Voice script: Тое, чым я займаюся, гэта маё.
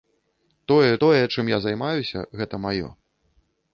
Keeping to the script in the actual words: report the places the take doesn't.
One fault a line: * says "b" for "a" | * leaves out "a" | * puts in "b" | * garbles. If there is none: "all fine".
* puts in "тое"